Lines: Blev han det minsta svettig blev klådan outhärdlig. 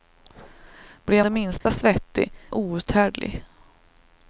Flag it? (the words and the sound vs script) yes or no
yes